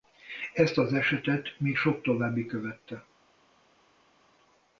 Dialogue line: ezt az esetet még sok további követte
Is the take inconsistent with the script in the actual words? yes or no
no